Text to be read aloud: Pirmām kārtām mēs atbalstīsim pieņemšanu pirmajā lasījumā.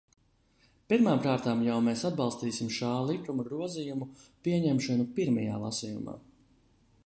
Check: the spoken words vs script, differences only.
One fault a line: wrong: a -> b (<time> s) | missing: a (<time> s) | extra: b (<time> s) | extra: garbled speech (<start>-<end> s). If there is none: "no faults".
extra: jau (1.7 s)
extra: šā likuma grozījumu (2.8 s)